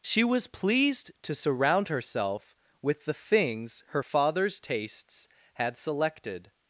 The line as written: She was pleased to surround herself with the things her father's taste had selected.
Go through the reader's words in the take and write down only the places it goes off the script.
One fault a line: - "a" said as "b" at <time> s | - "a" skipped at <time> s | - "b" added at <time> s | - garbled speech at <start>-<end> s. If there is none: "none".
- "taste" said as "tastes" at 4.6 s